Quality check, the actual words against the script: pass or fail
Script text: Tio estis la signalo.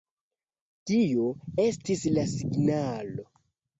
pass